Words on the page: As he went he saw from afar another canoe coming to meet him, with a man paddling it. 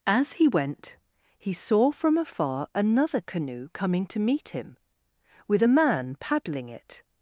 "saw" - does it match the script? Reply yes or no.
yes